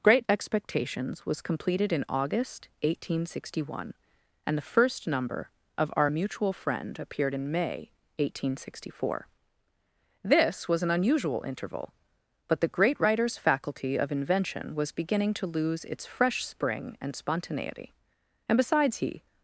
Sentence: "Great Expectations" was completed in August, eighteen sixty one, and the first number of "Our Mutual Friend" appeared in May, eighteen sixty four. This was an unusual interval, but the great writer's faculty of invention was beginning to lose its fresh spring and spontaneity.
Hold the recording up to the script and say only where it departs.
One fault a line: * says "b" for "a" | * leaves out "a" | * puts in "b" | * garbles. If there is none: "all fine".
* puts in "And besides he"